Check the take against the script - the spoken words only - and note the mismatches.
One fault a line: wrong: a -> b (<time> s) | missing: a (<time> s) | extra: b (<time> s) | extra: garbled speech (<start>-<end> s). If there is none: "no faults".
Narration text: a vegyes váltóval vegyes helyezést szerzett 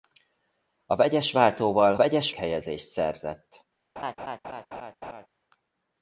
no faults